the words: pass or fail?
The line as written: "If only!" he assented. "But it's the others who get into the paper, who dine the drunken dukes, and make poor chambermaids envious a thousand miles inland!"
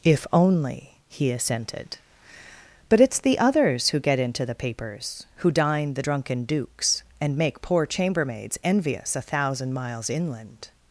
fail